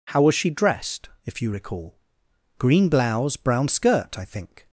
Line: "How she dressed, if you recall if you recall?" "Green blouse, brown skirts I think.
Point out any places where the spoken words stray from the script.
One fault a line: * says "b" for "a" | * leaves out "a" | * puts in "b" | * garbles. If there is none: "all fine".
* puts in "was"
* leaves out "if you recall"
* says "skirt" for "skirts"